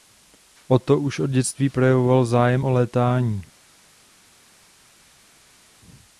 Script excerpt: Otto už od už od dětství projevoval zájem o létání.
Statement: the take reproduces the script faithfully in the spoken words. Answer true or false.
false